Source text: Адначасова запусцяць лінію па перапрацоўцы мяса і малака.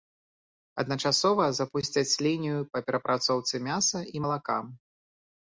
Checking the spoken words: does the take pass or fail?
pass